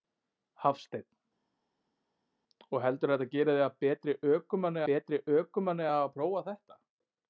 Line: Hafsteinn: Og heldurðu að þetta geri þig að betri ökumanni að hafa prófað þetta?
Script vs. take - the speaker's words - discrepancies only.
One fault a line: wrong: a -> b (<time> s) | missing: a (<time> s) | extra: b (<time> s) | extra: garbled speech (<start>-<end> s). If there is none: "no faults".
extra: betri ökumanni (4.9 s)